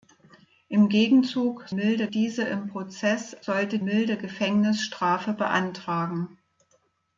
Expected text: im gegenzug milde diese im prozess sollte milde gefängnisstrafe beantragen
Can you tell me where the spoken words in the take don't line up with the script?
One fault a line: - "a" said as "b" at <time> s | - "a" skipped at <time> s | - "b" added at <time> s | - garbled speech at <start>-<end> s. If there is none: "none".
none